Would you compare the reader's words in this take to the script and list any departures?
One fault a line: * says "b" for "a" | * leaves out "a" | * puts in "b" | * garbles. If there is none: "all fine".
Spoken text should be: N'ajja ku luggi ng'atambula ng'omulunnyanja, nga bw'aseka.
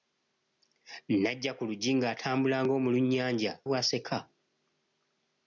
* leaves out "nga"